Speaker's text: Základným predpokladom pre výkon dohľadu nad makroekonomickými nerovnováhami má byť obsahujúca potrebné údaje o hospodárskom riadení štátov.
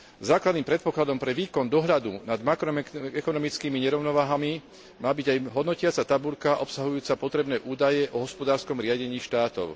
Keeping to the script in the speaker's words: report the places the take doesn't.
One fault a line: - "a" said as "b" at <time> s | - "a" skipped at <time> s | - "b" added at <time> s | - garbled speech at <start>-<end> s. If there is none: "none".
- "aj hodnotiaca tabuľka" added at 5.3 s